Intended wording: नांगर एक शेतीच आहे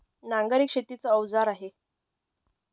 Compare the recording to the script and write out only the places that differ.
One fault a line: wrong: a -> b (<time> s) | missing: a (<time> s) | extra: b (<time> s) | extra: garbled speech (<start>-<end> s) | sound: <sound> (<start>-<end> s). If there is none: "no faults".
extra: अवजार (1.1 s)